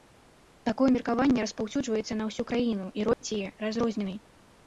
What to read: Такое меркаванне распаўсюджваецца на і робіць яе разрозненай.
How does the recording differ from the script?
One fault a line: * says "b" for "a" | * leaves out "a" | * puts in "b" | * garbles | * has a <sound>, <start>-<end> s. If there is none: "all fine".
* puts in "ўсю краіну"
* has a dropout, 3.1-3.2 s